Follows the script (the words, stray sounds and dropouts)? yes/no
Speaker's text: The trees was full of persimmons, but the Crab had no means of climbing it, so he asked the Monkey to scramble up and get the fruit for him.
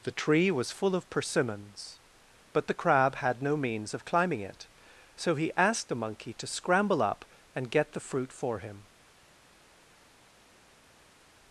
no